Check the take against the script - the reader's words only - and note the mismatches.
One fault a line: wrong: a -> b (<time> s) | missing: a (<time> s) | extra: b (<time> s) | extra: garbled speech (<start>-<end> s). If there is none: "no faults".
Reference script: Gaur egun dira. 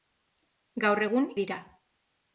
no faults